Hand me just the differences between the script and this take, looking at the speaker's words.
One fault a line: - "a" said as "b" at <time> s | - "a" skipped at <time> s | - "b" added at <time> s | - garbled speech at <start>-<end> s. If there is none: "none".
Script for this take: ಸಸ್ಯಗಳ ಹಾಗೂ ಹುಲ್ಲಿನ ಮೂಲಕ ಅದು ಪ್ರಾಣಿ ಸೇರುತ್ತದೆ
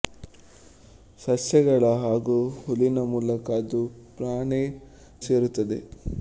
none